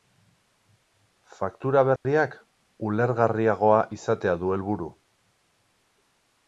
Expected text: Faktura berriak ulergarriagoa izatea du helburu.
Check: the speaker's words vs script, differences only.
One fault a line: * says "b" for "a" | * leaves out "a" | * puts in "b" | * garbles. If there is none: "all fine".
all fine